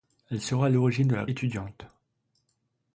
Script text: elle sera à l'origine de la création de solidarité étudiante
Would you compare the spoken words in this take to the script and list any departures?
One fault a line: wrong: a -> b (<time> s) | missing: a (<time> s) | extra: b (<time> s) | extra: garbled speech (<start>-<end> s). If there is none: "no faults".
missing: création de solidarité (1.3 s)